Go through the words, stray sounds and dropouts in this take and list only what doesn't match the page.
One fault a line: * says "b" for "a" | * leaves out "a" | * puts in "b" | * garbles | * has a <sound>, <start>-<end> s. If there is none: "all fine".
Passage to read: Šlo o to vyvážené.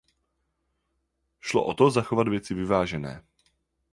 * puts in "zachovat věci"